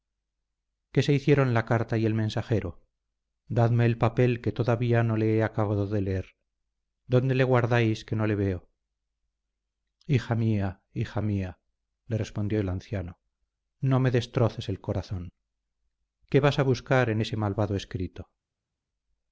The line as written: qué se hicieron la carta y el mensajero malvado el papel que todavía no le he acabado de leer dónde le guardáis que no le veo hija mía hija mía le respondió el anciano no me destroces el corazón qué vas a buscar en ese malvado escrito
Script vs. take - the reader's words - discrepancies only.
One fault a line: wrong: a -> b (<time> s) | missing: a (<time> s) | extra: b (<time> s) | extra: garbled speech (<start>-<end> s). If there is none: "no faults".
wrong: malvado -> dadme (3.5 s)